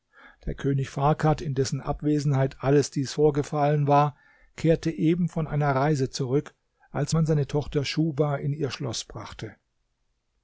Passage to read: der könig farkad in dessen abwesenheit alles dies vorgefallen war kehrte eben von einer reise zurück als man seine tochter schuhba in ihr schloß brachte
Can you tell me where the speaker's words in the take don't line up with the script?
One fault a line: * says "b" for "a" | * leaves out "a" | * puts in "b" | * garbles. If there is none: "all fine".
all fine